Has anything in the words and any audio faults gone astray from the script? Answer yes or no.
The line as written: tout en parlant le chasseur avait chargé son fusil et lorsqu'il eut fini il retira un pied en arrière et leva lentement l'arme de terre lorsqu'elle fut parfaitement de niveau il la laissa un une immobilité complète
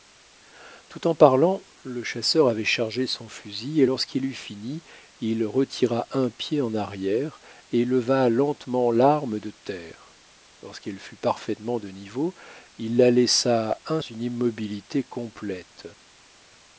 no